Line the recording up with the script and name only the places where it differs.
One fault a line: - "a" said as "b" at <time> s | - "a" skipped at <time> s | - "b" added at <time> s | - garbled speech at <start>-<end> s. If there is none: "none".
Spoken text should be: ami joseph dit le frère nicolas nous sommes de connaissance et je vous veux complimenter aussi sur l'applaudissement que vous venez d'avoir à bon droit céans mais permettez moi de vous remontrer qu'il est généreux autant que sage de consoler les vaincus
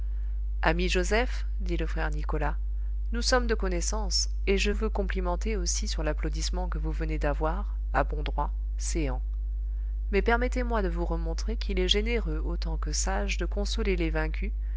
- "vous" skipped at 4.7 s